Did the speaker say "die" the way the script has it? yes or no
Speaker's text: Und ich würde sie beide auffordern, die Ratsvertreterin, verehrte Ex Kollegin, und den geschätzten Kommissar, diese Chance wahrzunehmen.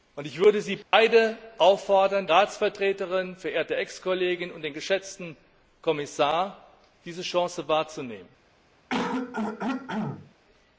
no